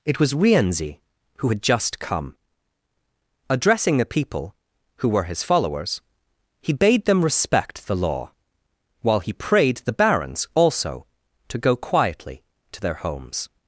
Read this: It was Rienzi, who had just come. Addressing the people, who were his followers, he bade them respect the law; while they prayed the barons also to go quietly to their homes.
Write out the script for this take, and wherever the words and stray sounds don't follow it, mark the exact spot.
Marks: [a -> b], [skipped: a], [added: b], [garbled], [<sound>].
It was Rienzi, who had just come. Addressing the people, who were his followers, he bade them respect the law; while [they -> he] prayed the barons also to go quietly to their homes.